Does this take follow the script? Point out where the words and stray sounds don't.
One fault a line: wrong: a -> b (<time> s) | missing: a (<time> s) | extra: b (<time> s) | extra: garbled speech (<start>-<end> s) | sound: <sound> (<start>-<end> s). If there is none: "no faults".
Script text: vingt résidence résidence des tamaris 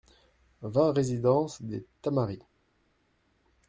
missing: résidence (1.6 s)